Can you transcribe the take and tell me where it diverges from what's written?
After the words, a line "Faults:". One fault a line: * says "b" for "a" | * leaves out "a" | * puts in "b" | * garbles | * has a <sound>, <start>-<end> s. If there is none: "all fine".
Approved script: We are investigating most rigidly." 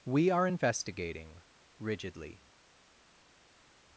We are investigating rigidly."
Faults:
* leaves out "most"